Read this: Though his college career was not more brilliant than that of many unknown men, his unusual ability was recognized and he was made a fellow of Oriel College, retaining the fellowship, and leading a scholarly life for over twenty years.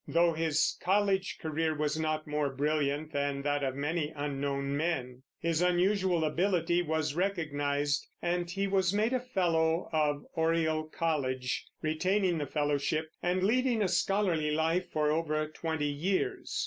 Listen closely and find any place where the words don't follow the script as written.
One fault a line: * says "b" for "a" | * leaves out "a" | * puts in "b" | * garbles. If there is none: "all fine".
all fine